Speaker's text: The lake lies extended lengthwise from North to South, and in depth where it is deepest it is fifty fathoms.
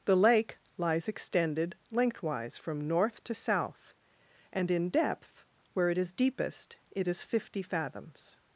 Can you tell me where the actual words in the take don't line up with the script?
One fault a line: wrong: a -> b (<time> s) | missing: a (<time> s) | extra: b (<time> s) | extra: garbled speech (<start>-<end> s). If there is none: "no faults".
no faults